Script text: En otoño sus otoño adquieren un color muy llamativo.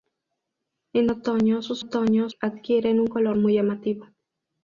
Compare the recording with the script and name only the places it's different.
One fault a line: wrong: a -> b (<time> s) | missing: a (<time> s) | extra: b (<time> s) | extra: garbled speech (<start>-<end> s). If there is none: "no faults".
no faults